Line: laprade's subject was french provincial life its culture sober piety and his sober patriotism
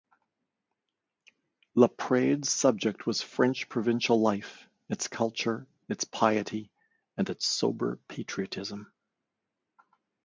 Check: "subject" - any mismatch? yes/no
no